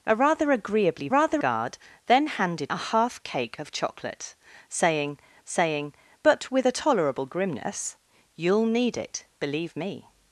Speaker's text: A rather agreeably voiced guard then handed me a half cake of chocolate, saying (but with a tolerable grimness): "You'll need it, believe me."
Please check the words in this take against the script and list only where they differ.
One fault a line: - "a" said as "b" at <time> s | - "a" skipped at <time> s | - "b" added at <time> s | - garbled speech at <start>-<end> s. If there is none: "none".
- "voiced" said as "rather" at 1.1 s
- "me" skipped at 2.7 s
- "saying" added at 5.5 s